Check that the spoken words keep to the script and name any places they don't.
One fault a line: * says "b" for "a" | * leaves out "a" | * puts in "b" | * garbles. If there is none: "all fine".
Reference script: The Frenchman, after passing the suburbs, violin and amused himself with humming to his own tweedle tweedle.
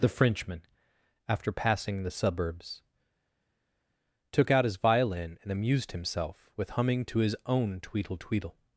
* puts in "took out his"